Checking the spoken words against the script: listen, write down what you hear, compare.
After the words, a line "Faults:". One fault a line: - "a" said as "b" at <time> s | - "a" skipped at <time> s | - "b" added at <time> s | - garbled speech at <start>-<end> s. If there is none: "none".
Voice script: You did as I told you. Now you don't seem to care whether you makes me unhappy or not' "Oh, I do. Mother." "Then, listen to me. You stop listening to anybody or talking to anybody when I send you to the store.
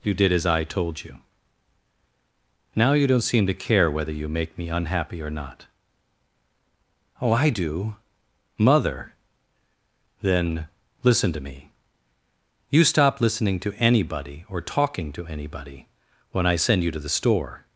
You did as I told you. Now you don't seem to care whether you make me unhappy or not' "Oh, I do. Mother." "Then, listen to me. You stop listening to anybody or talking to anybody when I send you to the store.
Faults:
- "makes" said as "make" at 4.3 s